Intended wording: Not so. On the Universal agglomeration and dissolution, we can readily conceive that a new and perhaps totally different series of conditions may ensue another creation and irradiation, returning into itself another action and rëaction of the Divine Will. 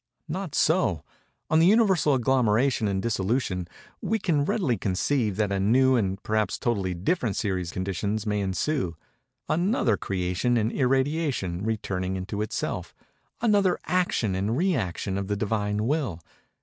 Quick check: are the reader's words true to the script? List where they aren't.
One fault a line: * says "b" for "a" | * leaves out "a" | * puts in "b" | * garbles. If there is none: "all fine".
* leaves out "of"